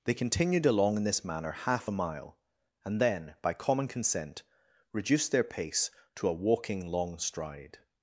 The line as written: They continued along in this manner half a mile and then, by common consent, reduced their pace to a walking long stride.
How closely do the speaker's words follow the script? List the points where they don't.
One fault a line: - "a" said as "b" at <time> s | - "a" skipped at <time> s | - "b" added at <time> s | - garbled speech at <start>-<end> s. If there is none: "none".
none